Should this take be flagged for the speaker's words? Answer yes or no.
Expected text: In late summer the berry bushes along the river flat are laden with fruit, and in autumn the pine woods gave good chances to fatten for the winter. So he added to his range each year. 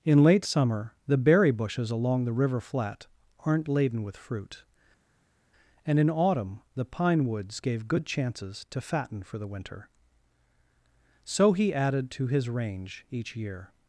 yes